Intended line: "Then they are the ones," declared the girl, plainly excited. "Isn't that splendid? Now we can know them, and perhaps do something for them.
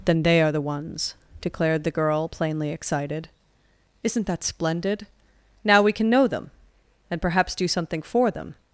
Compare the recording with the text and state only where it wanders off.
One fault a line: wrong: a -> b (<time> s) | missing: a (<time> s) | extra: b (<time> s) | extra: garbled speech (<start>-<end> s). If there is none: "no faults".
no faults